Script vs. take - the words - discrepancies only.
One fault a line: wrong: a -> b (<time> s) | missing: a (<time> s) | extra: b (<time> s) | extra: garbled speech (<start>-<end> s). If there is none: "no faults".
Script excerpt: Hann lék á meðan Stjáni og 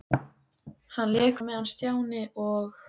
no faults